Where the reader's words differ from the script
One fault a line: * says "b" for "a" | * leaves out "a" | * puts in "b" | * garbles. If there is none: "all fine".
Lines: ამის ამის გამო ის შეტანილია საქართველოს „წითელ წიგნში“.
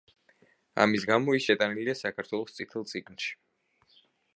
* leaves out "ამის"